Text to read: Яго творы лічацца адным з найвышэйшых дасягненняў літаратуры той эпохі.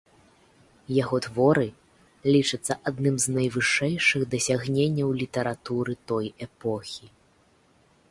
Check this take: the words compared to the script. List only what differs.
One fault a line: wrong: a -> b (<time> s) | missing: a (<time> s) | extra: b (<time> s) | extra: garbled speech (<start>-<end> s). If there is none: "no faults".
no faults